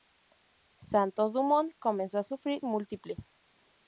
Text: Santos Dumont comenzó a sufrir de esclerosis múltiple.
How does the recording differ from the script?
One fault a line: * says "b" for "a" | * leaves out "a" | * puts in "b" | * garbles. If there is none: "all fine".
* leaves out "de esclerosis"